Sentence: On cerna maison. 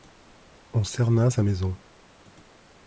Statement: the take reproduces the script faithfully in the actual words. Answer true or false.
false